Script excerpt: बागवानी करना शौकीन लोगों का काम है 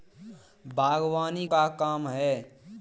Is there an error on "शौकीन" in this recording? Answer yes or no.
yes